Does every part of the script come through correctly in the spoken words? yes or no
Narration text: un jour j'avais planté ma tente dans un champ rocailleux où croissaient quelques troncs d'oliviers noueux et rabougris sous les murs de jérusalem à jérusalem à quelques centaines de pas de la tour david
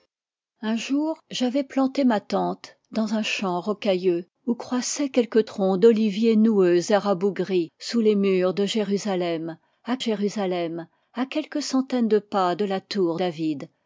yes